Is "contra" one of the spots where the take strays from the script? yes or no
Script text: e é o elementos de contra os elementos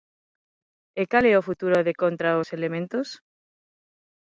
no